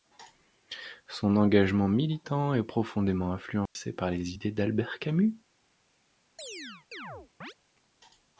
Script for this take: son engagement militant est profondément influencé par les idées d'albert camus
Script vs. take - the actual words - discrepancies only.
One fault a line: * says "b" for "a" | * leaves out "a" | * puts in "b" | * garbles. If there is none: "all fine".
all fine